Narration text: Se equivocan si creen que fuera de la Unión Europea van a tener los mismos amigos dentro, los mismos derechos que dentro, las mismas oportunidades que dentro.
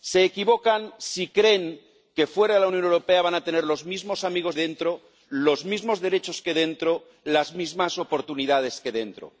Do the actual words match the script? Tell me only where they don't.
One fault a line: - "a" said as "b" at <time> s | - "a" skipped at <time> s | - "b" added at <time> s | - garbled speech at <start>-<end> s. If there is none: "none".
none